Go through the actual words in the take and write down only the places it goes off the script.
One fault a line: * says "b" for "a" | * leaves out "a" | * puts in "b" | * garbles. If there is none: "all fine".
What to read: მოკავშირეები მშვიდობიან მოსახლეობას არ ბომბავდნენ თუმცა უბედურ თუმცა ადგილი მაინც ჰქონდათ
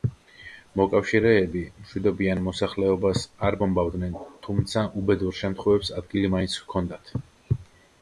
* says "შემთხვევებს" for "თუმცა"